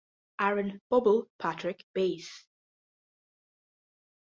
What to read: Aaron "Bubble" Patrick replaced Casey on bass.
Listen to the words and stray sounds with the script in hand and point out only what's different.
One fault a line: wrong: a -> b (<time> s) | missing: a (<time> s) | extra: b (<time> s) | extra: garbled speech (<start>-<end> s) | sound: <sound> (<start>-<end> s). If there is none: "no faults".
missing: replaced Casey on (1.9 s)